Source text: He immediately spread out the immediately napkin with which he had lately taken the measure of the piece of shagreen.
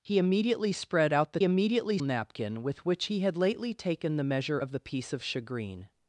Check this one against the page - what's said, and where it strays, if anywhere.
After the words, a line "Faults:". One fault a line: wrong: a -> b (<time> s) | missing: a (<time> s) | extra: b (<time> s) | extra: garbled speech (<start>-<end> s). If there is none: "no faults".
He immediately spread out the immediately napkin with which he had lately taken the measure of the piece of shagreen.
Faults:
no faults